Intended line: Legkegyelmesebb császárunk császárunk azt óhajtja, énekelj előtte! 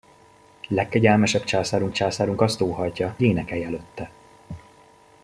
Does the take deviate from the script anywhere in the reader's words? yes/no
no